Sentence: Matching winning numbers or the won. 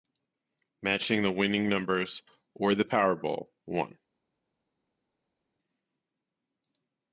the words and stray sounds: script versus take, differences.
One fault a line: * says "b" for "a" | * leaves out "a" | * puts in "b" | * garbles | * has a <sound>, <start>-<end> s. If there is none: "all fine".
* puts in "the"
* puts in "powerball"